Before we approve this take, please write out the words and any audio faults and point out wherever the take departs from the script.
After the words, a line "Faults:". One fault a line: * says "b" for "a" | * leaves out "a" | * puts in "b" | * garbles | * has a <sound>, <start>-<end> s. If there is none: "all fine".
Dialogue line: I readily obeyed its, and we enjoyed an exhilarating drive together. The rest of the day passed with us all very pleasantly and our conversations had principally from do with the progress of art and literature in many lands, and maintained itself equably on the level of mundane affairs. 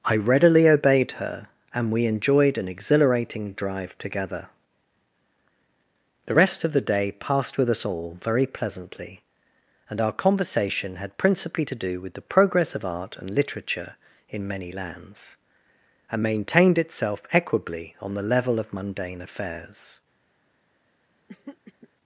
I readily obeyed her, and we enjoyed an exhilarating drive together. The rest of the day passed with us all very pleasantly and our conversation had principally to do with the progress of art and literature in many lands, and maintained itself equably on the level of mundane affairs.
Faults:
* says "her" for "its"
* says "conversation" for "conversations"
* says "to" for "from"
* has a throat clearing, 21.3-21.9 s